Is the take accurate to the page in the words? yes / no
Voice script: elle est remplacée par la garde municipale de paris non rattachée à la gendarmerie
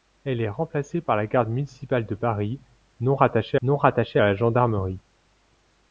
no